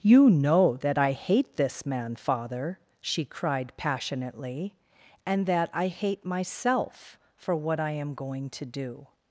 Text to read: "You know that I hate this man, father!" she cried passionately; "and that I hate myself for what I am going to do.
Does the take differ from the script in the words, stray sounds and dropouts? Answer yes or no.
no